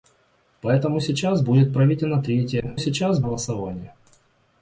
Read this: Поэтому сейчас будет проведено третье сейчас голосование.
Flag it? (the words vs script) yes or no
no